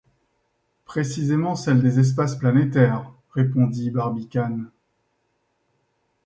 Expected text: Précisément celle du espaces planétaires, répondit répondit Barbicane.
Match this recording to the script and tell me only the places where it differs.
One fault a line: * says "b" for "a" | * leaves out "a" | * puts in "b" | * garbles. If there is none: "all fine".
* says "des" for "du"
* leaves out "répondit"